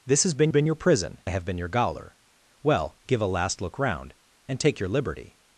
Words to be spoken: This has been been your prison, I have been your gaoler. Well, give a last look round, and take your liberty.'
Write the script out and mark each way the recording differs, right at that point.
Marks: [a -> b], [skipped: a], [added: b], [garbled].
This has been been your prison, I have been your gaoler. Well, give a last look round, and take your liberty.'